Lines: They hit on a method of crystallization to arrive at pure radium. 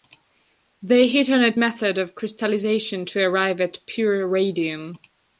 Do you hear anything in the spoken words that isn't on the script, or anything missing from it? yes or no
no